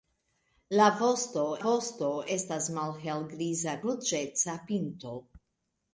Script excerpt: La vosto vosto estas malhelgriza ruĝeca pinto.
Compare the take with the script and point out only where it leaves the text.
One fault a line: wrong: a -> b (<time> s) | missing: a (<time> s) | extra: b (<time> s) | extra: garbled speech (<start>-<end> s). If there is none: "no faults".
no faults